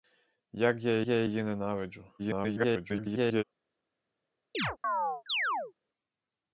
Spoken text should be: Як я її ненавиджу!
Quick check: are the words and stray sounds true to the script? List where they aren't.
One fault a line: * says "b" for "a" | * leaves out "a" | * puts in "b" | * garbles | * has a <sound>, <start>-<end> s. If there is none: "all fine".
* puts in "я"
* garbles
* has a chirp, 4.5-5.7 s